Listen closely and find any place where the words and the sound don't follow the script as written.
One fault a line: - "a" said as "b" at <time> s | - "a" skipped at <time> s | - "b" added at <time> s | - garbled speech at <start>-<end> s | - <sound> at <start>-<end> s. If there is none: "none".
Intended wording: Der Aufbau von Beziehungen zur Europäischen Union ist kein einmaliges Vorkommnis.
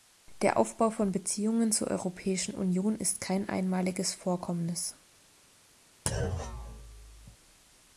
- thud at 6.1-7.4 s